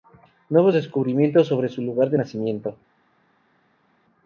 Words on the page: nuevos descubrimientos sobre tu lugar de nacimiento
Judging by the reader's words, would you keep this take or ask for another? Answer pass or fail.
fail